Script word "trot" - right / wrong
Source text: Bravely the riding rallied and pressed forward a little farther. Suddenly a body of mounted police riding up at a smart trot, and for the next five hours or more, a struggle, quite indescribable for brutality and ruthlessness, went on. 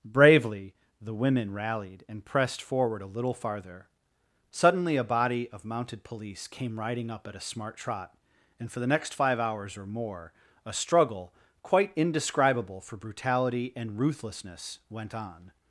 right